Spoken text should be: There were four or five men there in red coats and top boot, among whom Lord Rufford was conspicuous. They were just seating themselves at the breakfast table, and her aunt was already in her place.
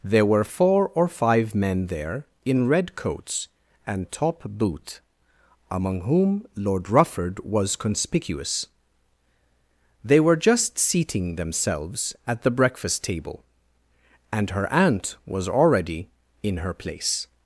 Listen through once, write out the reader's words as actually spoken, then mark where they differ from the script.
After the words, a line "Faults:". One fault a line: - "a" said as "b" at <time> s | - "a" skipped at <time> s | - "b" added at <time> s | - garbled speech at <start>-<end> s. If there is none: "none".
There were four or five men there in red coats and top boot, among whom Lord Rufford was conspicuous. They were just seating themselves at the breakfast table, and her aunt was already in her place.
Faults:
none